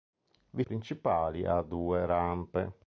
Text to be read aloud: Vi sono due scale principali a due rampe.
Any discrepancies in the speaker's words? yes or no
yes